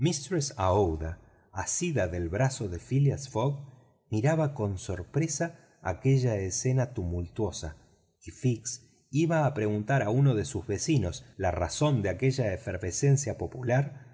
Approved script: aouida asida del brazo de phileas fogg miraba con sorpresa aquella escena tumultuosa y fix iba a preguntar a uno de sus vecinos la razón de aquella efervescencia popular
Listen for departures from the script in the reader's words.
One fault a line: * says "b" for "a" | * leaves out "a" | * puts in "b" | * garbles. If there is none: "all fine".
all fine